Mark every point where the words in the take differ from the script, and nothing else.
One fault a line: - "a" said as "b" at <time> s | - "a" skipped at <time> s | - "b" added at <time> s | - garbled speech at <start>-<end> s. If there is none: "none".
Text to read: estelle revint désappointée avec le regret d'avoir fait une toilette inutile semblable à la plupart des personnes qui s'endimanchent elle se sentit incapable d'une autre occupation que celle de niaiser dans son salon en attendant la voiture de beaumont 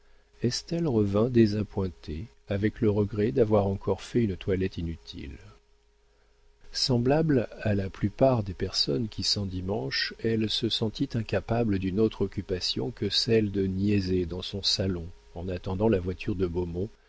- "encore" added at 3.7 s